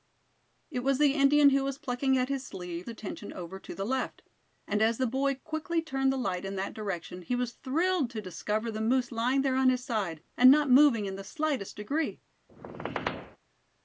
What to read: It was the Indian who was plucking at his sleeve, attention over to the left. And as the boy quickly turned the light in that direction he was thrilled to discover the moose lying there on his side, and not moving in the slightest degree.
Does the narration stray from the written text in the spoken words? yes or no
no